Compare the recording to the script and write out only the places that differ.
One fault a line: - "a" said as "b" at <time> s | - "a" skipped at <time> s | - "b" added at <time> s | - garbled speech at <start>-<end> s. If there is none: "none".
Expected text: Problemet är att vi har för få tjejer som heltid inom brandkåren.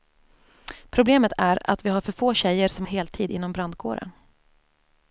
none